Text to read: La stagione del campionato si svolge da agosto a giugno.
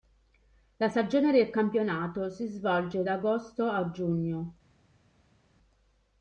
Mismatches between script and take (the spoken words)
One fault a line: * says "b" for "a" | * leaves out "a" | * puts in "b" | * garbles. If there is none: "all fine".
all fine